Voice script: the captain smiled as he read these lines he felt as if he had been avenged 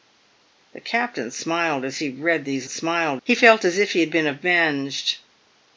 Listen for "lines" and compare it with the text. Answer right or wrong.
wrong